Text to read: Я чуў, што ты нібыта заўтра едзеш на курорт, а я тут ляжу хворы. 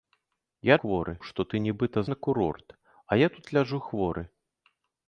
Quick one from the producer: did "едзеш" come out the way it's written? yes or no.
no